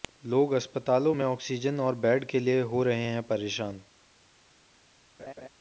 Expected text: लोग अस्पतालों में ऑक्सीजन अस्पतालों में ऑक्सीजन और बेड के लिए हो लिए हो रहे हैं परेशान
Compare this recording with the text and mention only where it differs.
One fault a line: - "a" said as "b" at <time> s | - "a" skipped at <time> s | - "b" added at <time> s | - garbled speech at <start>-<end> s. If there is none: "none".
- "अस्पतालों में ऑक्सीजन" skipped at 1.8 s
- "लिए हो" skipped at 2.8 s